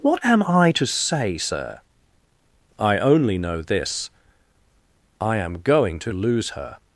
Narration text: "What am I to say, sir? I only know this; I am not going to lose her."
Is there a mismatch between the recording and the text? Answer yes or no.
yes